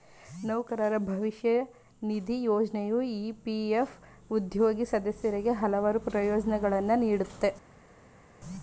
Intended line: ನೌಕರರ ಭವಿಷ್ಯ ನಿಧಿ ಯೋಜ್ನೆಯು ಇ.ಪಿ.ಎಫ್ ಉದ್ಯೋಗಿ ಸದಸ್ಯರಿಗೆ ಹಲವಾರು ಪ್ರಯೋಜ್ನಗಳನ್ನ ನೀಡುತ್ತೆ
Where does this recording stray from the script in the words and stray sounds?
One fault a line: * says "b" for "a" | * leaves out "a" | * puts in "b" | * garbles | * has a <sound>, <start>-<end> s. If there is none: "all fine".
all fine